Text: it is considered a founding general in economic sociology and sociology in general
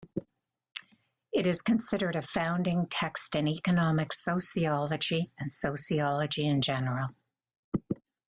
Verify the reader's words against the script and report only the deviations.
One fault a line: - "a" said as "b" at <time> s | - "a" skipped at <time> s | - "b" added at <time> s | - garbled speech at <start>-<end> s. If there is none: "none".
- "general" said as "text" at 2.9 s